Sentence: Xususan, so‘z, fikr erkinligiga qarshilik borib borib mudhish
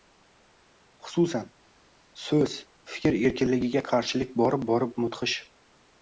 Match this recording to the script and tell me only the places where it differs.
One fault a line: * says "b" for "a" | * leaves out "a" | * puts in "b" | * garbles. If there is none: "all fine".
all fine